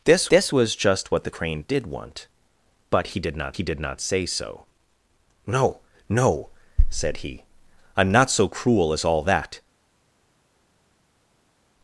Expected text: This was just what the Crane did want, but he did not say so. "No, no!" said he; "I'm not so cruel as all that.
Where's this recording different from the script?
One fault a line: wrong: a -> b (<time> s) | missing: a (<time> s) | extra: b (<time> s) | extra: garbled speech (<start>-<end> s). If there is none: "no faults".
extra: this (0.3 s)
extra: he did not (3.5 s)